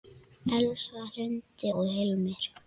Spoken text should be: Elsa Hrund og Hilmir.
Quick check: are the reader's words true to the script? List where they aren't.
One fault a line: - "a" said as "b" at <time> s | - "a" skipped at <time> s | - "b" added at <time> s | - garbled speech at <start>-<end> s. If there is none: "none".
none